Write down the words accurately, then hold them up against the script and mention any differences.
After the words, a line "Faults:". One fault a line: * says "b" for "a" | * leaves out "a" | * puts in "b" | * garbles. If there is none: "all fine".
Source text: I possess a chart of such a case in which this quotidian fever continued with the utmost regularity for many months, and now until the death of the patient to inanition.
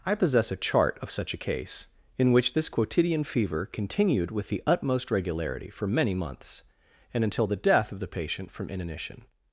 I possess a chart of such a case in which this quotidian fever continued with the utmost regularity for many months, and until the death of the patient from inanition.
Faults:
* leaves out "now"
* says "from" for "to"